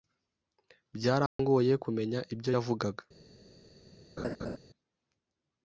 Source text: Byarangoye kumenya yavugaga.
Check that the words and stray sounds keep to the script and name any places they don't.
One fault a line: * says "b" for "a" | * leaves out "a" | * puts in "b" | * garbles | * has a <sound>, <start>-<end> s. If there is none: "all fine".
* has a dropout, 1.3-1.4 s
* puts in "ibyo"
* has a laugh, 4.2-4.6 s